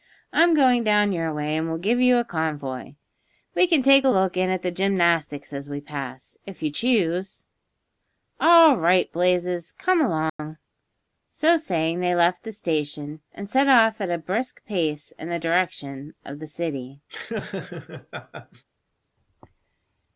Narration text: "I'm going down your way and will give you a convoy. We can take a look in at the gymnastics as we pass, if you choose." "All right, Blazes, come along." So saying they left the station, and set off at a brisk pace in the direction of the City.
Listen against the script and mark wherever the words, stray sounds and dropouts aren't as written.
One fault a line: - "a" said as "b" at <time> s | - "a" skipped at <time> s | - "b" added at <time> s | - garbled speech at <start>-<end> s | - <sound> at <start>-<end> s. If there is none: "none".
- dropout at 10.3-10.4 s
- laugh at 17.1-18.6 s